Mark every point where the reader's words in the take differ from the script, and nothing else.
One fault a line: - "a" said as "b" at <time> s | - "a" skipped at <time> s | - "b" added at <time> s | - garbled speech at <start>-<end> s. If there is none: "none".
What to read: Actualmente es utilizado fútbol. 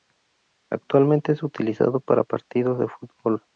- "para partidos de" added at 2.0 s